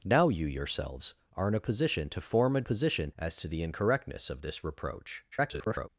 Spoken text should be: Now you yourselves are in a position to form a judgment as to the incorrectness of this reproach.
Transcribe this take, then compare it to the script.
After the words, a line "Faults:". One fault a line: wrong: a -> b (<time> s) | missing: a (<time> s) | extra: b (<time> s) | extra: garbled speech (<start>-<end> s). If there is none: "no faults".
Now you yourselves are in a position to form a position as to the incorrectness of this reproach. [garbled]
Faults:
wrong: judgment -> position (2.6 s)
extra: garbled speech (5.3-5.9 s)